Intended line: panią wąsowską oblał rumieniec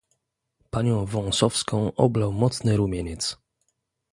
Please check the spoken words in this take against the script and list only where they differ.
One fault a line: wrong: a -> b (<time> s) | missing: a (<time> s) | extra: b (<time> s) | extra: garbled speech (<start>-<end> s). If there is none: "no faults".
extra: mocny (2.3 s)